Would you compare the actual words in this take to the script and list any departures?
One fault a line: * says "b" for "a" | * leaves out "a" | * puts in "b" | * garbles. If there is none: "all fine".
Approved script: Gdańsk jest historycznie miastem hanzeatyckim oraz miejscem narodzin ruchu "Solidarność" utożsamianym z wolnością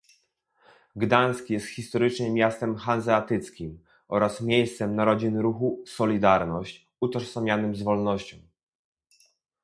all fine